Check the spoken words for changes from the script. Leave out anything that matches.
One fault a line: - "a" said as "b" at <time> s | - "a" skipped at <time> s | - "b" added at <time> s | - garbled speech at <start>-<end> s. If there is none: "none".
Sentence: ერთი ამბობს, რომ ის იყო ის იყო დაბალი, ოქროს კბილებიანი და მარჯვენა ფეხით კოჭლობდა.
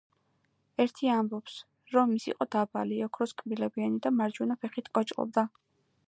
- "ის იყო" skipped at 2.5 s